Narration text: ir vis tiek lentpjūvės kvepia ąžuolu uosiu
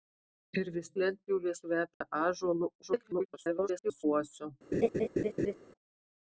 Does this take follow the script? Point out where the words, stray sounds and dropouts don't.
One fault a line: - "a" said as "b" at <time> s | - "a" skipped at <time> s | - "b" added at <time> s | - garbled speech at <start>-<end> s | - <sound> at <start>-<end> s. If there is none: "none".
- "tiek" skipped at 0.9 s
- dropout at 1.9-2.0 s
- garbled speech at 2.8-4.0 s
- laugh at 4.7-5.5 s